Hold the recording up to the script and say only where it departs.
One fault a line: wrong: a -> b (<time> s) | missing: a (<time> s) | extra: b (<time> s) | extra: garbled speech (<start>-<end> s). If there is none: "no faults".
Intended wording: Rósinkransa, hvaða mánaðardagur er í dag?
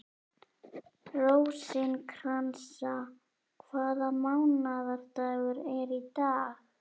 no faults